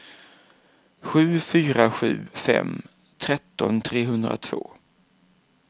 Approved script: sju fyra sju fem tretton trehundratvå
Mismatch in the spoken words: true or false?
false